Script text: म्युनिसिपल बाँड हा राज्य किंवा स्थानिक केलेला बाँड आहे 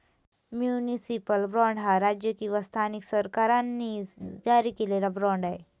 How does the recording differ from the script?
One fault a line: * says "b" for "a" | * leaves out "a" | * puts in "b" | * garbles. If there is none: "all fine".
* puts in "सरकारांनी जारी"